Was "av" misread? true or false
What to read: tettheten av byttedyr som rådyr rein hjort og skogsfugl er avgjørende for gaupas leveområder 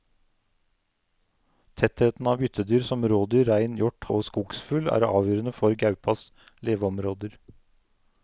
false